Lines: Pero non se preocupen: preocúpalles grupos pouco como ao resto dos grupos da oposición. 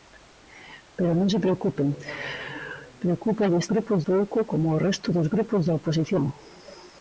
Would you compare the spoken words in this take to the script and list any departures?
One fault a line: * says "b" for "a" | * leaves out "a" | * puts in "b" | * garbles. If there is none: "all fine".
all fine